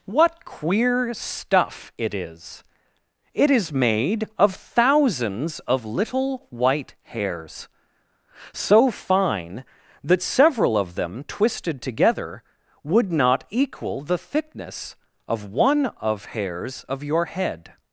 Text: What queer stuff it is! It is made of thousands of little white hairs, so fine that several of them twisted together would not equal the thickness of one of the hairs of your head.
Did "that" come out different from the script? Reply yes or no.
no